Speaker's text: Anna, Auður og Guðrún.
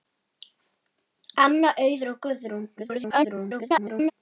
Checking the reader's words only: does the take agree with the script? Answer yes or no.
no